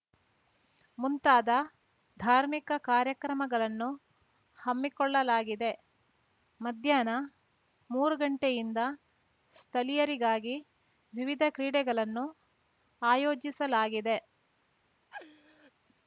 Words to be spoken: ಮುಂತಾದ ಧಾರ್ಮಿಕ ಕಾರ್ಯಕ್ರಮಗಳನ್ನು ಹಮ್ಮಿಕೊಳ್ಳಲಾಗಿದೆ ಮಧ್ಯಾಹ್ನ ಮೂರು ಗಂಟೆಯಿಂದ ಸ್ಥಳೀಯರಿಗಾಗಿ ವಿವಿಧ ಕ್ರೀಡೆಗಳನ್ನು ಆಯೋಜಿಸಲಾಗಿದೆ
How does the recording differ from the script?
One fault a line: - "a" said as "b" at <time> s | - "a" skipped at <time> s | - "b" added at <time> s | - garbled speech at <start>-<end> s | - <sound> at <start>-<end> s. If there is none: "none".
- laugh at 15.1-15.7 s